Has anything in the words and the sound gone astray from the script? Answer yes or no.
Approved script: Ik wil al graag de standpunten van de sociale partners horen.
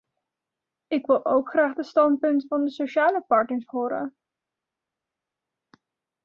yes